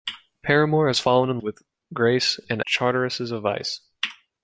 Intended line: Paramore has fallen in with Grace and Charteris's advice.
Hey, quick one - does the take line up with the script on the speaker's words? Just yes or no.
yes